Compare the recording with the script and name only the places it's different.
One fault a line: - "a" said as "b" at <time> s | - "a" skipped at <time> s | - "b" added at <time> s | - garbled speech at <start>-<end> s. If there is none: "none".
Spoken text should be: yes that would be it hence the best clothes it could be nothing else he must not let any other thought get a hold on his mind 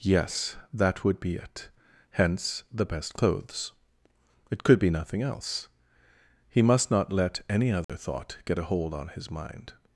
none